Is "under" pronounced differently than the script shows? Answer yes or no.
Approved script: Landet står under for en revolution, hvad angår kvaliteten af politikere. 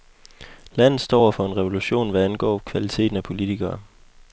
yes